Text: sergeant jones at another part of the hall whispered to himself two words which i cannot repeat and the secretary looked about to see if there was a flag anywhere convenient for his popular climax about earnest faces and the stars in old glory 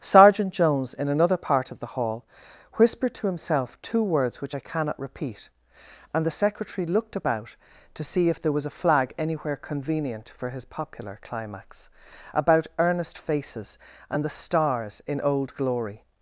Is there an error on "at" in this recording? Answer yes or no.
yes